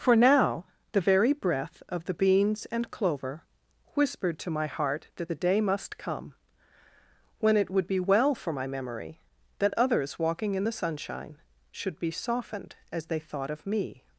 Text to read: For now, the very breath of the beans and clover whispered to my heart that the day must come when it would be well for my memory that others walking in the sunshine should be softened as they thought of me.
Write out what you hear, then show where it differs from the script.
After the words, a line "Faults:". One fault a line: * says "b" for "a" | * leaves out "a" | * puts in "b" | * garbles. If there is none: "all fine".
For now, the very breath of the beans and clover whispered to my heart that the day must come when it would be well for my memory that others walking in the sunshine should be softened as they thought of me.
Faults:
all fine